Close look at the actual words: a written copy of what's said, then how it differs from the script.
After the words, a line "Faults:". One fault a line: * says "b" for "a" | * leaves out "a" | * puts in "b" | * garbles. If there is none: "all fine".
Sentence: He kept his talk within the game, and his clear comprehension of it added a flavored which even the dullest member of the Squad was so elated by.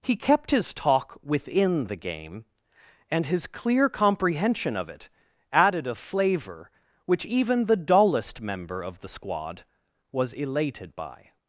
He kept his talk within the game, and his clear comprehension of it added a flavor which even the dullest member of the Squad was elated by.
Faults:
* says "flavor" for "flavored"
* leaves out "so"